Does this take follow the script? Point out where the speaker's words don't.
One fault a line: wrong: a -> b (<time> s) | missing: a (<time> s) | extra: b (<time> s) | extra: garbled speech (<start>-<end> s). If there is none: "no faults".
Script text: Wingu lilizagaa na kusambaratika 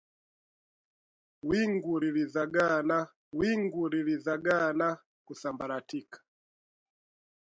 extra: wingu lilizagaa na (3.3 s)